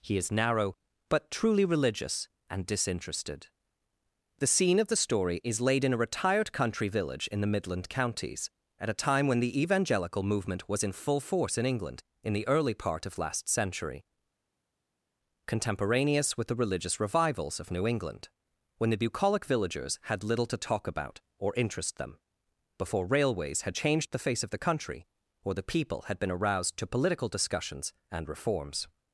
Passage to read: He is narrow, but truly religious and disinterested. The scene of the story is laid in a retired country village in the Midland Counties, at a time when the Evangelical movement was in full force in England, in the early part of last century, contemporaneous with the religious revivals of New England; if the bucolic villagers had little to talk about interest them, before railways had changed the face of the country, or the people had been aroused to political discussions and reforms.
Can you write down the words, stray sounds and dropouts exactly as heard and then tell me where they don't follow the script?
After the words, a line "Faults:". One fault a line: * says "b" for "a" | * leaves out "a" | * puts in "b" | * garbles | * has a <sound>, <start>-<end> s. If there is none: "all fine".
He is narrow, but truly religious and disinterested. The scene of the story is laid in a retired country village in the Midland Counties, at a time when the Evangelical movement was in full force in England, in the early part of last century, contemporaneous with the religious revivals of New England; when the bucolic villagers had little to talk about or interest them, before railways had changed the face of the country, or the people had been aroused to political discussions and reforms.
Faults:
* says "when" for "if"
* puts in "or"